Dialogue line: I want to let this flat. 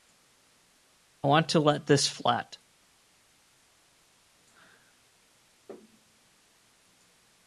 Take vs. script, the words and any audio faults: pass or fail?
pass